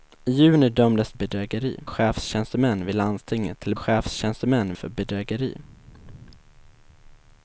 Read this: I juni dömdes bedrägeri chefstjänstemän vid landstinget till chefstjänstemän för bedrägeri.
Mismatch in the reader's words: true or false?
false